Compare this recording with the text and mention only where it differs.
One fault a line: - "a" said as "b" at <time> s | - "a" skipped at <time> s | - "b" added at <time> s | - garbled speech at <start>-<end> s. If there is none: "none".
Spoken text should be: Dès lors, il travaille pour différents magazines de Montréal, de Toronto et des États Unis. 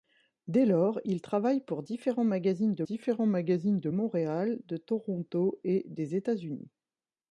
- "différents magazines de" added at 2.8 s